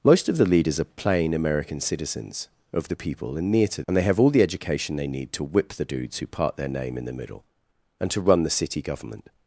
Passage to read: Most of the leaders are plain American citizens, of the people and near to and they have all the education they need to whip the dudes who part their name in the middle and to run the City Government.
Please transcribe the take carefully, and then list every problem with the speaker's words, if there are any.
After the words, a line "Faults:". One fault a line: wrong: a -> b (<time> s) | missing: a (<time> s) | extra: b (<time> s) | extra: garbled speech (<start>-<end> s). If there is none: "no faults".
Most of the leaders are plain American citizens, of the people and near to and they have all the education they need to whip the dudes who part their name in the middle and to run the City Government.
Faults:
no faults